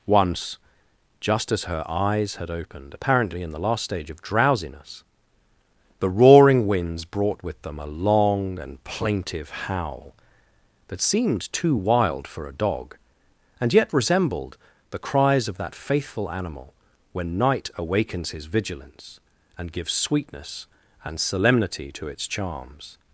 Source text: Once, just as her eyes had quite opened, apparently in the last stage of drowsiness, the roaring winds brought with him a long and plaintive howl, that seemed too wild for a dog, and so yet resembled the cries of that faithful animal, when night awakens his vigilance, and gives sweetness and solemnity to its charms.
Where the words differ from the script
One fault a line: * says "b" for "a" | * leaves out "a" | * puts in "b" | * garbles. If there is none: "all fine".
* leaves out "quite"
* says "them" for "him"
* leaves out "so"